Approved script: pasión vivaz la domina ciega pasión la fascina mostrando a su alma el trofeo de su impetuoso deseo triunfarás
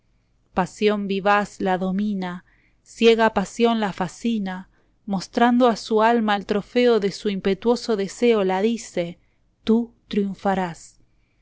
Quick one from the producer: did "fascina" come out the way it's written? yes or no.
yes